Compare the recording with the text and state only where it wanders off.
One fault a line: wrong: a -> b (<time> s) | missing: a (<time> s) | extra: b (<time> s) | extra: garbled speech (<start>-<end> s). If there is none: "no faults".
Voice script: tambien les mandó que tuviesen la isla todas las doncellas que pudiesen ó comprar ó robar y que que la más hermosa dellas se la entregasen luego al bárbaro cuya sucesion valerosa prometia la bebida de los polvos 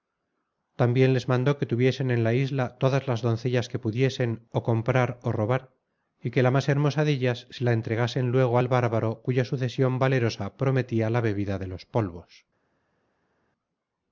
extra: en (2.1 s)
missing: que (6.4 s)